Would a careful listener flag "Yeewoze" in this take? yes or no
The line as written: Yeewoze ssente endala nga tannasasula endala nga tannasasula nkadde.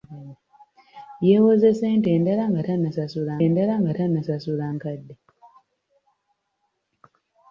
no